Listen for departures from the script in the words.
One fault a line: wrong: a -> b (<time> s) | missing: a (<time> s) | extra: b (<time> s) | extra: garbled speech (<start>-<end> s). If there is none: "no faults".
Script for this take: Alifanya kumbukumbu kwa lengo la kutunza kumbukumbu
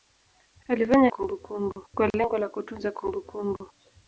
no faults